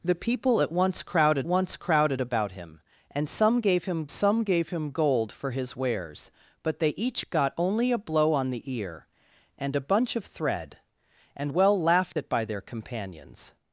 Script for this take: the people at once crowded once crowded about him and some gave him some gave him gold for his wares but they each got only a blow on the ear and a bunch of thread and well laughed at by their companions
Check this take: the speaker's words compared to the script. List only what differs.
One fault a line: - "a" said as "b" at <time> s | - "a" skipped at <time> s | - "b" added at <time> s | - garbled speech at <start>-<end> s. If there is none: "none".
none